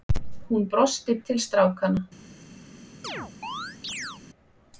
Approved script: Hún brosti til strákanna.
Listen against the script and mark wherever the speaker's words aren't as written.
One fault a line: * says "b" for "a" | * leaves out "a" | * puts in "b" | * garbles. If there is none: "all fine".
all fine